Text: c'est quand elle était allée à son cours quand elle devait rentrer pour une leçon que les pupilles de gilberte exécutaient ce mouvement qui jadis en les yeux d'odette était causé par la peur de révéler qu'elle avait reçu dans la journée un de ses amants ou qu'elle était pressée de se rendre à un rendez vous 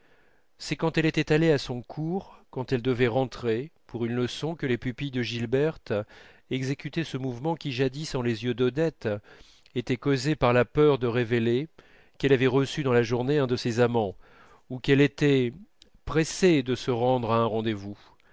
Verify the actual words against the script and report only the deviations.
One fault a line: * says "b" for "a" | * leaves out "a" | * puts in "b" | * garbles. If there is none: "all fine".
all fine